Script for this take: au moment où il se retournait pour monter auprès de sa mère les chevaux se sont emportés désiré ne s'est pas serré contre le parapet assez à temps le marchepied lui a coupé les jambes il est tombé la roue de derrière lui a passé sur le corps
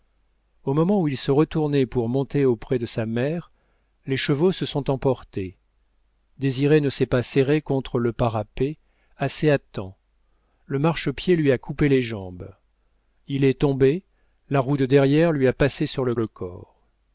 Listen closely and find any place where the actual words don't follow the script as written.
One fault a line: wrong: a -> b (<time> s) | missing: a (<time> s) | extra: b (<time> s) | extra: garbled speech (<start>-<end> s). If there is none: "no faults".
extra: le (16.1 s)